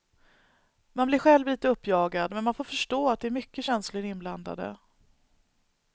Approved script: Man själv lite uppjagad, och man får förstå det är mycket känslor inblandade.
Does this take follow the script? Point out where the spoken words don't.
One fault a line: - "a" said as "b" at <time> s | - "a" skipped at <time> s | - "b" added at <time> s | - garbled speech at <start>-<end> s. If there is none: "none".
- "blir" added at 1.1 s
- "och" said as "men" at 2.3 s
- "att" added at 3.1 s